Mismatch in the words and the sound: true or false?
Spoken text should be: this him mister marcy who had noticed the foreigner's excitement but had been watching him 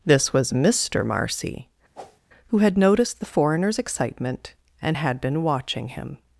true